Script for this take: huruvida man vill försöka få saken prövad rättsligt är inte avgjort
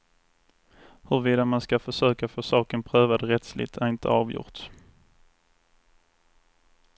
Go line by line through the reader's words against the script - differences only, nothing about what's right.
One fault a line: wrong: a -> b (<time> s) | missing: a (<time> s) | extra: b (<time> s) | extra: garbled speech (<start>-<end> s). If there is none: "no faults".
wrong: vill -> ska (1.6 s)